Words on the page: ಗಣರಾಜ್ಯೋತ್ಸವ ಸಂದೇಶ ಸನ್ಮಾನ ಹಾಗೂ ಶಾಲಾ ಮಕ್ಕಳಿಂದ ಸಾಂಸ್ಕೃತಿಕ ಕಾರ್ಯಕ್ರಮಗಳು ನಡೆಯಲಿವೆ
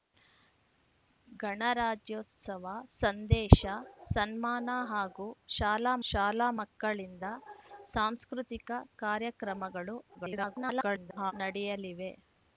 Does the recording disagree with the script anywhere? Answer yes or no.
yes